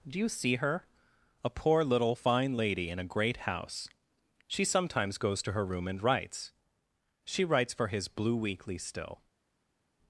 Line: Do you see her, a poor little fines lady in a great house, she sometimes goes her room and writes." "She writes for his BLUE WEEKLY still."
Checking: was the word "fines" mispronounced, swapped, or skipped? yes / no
yes